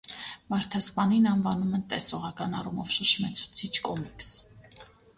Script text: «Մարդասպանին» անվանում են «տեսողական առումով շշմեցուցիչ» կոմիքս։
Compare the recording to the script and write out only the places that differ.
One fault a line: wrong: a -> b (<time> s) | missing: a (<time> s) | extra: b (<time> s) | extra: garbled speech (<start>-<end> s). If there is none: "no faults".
no faults